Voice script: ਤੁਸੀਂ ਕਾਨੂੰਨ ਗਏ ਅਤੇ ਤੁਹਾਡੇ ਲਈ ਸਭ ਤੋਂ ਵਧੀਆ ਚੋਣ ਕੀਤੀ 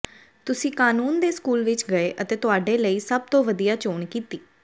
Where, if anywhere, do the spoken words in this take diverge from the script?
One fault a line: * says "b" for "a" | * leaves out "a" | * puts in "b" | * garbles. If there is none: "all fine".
* puts in "ਦੇ ਸਕੂਲ ਵਿੱਚ"